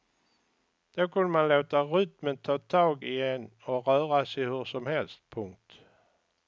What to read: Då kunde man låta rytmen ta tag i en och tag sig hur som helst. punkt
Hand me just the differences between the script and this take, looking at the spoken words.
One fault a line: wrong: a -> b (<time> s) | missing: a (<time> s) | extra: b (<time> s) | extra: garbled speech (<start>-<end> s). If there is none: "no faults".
wrong: tag -> röra (3.9 s)